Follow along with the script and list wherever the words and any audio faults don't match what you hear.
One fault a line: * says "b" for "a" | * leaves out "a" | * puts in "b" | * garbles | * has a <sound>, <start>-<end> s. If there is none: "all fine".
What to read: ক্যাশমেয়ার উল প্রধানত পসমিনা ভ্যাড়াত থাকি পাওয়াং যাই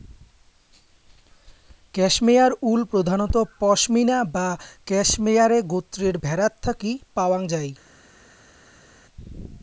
* puts in "বা ক্যাশমেয়ারে গোত্রের"